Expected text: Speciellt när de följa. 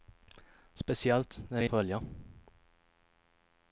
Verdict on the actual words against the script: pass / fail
pass